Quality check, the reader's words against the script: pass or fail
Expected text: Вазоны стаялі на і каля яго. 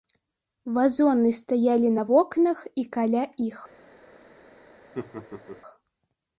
fail